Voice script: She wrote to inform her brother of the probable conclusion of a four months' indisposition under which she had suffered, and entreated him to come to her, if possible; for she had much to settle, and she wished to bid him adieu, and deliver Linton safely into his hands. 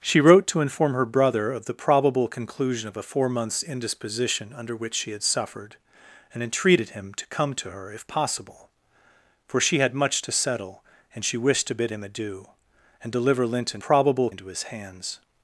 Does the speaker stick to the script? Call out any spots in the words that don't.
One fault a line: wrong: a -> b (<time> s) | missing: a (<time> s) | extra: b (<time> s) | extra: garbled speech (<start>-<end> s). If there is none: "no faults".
wrong: safely -> probable (13.8 s)